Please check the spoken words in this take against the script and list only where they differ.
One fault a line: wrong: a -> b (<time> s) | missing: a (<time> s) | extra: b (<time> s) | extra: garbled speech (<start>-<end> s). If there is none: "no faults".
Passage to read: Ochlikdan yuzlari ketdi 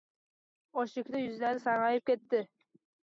extra: sarg`ayib (1.6 s)